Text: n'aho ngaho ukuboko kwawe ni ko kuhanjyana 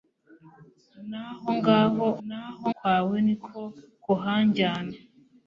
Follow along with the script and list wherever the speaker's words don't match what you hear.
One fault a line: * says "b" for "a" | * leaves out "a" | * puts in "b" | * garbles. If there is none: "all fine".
* says "n'aho" for "ukuboko"